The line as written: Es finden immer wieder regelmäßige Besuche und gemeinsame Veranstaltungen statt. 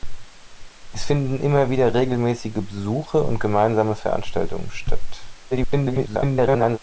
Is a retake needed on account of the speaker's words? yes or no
yes